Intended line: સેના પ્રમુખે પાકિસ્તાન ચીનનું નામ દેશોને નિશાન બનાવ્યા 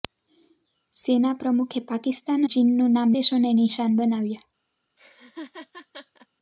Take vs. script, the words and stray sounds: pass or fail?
fail